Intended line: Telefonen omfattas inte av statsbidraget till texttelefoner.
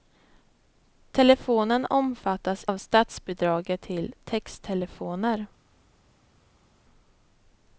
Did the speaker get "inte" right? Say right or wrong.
wrong